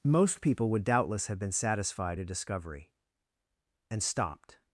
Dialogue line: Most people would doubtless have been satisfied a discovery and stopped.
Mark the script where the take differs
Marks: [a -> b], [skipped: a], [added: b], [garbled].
Most people would doubtless have been satisfied a discovery and stopped.